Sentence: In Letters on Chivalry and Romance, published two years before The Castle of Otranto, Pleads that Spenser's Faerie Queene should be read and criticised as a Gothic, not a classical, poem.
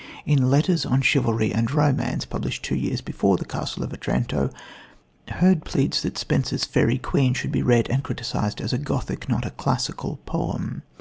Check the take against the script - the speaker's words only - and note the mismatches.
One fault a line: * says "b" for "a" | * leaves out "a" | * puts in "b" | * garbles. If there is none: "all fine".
* puts in "Hurd"